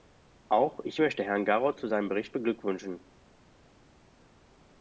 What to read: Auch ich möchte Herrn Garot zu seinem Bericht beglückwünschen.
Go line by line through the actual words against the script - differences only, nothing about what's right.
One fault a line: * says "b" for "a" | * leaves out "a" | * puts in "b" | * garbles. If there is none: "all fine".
all fine